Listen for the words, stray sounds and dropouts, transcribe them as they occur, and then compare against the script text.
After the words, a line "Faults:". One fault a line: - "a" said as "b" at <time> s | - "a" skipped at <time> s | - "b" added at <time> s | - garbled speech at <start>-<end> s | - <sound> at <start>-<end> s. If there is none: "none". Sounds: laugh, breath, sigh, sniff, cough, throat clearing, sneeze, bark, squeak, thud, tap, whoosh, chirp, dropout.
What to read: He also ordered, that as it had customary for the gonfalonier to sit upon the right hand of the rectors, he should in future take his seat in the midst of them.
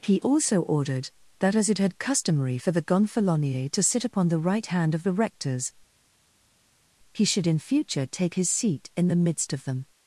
He also ordered, that as it had customary for the gonfalonier to sit upon the right hand of the rectors, he should in future take his seat in the midst of them.
Faults:
none